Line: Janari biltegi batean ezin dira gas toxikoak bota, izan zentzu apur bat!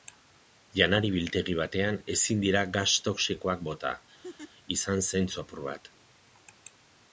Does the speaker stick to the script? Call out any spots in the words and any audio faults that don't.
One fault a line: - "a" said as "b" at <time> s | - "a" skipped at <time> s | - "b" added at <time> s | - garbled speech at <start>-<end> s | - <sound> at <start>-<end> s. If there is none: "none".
- laugh at 4.2-4.5 s